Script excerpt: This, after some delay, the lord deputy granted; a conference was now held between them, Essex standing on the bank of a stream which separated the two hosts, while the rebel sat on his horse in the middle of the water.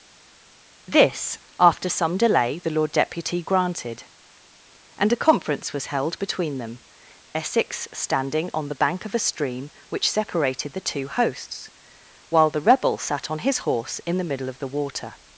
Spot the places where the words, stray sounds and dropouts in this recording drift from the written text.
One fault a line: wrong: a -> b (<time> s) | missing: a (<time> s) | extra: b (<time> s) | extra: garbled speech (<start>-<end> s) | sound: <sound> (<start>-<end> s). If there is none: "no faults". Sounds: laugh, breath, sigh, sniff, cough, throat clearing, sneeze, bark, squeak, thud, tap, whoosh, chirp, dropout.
extra: and (5.0 s)
missing: now (5.9 s)